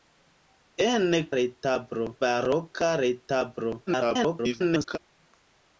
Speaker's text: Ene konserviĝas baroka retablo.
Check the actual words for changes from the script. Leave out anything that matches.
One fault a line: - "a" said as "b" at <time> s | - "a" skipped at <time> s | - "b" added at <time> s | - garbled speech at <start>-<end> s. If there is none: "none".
- "konserviĝas" said as "retablo" at 1.4 s
- garbled speech at 3.9-5.0 s